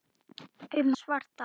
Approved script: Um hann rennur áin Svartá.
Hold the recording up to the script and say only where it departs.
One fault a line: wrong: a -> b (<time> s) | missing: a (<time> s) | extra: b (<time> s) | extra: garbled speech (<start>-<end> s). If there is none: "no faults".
missing: hann rennur áin (0.9 s)